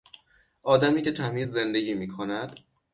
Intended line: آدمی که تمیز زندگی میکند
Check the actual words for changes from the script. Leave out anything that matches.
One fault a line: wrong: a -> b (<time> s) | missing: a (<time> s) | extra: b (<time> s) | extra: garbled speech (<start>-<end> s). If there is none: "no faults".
no faults